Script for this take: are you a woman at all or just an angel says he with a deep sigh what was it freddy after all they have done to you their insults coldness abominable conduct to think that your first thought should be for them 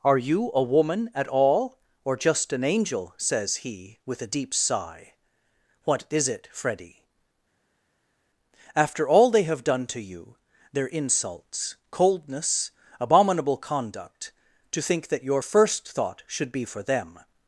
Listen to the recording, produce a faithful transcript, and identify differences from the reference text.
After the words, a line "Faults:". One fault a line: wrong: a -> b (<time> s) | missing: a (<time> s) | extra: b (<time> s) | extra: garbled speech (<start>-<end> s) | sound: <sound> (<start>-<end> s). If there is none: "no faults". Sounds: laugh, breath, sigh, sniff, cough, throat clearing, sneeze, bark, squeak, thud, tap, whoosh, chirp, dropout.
are you a woman at all or just an angel says he with a deep sigh what is it freddy after all they have done to you their insults coldness abominable conduct to think that your first thought should be for them
Faults:
wrong: was -> is (6.1 s)